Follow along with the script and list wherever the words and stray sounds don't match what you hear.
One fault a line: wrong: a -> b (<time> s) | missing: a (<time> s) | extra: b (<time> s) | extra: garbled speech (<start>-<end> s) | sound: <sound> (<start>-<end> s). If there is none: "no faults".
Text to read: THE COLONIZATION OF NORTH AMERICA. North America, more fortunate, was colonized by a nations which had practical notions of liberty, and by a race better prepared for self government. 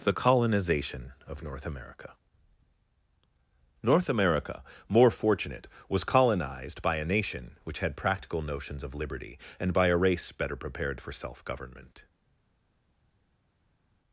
wrong: nations -> nation (7.1 s)